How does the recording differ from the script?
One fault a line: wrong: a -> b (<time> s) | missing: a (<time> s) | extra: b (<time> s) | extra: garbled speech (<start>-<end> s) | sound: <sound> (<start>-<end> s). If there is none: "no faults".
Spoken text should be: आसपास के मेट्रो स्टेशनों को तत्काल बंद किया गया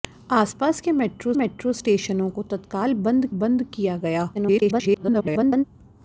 extra: मेट्रो (1.3 s)
extra: बंद (3.4 s)
extra: garbled speech (4.3-5.6 s)